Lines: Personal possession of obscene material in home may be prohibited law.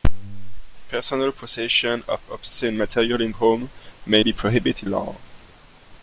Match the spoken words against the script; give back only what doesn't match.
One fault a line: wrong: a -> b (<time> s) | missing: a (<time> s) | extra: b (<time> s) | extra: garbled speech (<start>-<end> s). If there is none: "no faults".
no faults